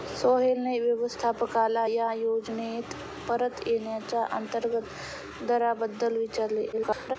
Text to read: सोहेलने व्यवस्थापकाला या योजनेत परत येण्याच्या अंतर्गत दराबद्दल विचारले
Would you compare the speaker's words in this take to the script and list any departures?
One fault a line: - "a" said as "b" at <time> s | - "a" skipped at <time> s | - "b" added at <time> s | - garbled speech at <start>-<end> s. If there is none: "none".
- garbled speech at 6.7-7.2 s